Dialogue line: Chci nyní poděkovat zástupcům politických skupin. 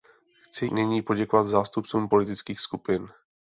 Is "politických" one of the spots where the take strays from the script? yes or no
no